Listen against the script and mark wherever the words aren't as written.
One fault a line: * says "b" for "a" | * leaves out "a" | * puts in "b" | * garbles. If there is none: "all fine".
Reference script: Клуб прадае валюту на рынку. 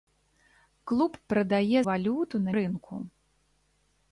all fine